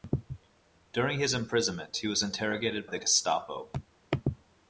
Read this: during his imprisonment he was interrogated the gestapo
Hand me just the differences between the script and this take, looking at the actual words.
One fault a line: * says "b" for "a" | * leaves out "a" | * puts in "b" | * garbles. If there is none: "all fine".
all fine